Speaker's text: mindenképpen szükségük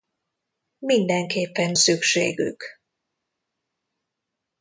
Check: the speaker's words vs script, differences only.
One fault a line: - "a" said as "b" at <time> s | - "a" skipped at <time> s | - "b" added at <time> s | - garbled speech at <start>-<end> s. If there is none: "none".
none